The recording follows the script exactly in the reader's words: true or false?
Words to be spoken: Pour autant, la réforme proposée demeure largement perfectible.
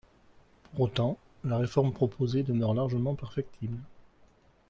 true